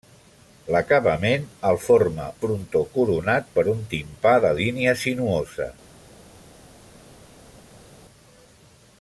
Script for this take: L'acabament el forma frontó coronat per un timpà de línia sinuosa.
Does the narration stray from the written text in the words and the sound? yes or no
no